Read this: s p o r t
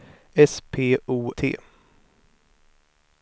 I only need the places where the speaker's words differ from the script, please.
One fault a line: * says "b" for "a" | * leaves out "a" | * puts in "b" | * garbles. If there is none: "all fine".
* leaves out "r"